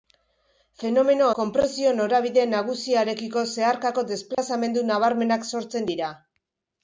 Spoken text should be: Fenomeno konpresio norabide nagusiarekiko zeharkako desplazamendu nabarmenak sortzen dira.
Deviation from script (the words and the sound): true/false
true